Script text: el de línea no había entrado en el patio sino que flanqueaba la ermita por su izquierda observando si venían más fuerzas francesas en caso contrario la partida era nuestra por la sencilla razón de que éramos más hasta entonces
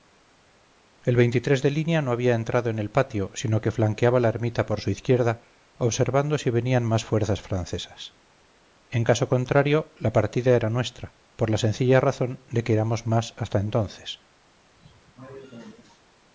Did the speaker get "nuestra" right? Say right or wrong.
right